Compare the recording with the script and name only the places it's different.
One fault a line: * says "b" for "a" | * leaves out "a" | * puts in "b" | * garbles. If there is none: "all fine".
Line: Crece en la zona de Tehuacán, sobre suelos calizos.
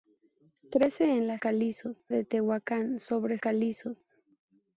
* says "calizos" for "zona"
* leaves out "suelos"